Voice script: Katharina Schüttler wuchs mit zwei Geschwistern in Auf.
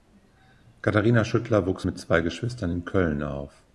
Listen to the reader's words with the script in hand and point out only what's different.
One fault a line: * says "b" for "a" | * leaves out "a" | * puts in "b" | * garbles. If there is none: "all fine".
* puts in "Köln"